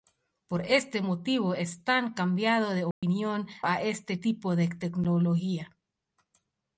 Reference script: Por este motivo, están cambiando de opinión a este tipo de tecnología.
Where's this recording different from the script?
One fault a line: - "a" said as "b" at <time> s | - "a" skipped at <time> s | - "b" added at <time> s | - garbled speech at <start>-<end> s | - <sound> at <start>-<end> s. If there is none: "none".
- dropout at 2.9-3.0 s